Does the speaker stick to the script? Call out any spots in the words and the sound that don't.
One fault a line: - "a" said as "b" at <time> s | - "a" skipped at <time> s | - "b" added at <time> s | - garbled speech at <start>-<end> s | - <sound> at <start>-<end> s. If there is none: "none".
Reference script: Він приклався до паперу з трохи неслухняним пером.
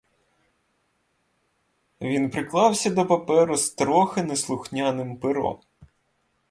none